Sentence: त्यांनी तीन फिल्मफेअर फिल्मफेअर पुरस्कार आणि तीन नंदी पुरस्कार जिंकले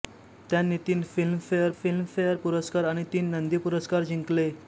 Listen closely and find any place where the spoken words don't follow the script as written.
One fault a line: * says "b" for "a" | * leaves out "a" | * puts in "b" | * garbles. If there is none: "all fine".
all fine